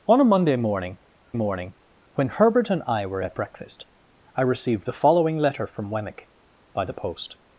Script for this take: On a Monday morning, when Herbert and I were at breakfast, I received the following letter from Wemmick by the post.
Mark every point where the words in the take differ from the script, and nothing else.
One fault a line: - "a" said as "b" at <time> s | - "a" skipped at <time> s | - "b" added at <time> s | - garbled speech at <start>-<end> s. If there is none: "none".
- "morning" added at 1.3 s